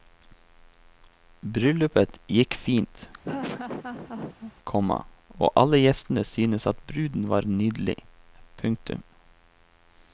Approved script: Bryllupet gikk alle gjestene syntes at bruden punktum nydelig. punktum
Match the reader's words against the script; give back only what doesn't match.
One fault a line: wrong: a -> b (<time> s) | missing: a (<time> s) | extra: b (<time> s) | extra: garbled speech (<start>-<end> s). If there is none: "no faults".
extra: fint komma og (2.7 s)
wrong: punktum -> var (7.3 s)